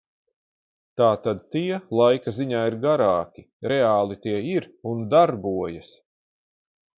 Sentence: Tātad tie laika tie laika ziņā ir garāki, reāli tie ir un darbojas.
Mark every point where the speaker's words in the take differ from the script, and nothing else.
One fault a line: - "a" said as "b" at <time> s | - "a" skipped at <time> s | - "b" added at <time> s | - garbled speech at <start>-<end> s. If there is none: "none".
- "tie laika" skipped at 2.3 s